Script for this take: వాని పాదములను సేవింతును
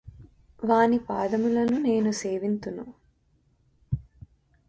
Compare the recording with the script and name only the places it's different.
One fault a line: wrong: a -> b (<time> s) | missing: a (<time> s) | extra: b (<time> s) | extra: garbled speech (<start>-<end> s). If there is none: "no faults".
extra: నేను (1.8 s)